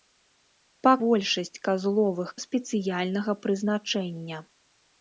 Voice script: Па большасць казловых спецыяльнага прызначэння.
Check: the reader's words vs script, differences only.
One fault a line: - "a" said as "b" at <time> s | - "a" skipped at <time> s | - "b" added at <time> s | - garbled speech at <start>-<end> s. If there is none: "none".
none